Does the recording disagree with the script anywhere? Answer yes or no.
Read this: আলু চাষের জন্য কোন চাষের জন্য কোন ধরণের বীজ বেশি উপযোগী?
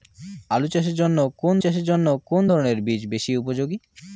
no